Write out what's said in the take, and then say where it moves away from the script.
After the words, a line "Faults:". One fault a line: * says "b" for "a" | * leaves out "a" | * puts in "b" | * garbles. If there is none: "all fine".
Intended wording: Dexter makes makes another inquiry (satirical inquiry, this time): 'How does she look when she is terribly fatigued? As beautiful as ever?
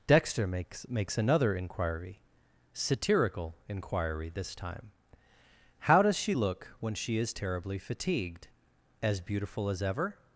Dexter makes makes another inquiry (satirical inquiry, this time): 'How does she look when she is terribly fatigued? As beautiful as ever?
Faults:
all fine